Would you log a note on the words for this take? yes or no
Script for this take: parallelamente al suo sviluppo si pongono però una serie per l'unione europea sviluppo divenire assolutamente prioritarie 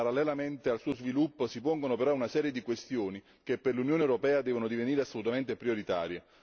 yes